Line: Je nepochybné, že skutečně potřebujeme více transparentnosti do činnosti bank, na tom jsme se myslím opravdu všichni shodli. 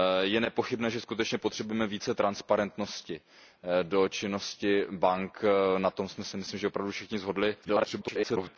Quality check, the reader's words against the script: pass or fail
fail